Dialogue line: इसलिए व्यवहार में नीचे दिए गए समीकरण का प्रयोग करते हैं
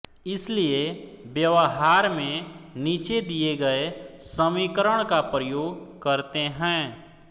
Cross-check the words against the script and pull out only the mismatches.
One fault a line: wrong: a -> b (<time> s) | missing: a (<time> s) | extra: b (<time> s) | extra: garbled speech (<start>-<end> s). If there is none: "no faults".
no faults